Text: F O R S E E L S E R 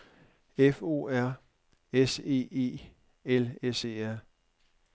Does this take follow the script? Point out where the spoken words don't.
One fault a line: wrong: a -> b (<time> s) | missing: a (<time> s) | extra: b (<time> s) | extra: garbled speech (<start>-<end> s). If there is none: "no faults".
no faults